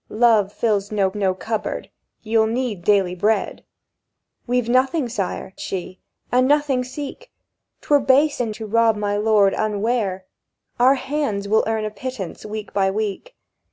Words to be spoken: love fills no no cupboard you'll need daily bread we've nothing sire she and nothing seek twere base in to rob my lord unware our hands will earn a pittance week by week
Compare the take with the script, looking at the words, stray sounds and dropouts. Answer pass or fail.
pass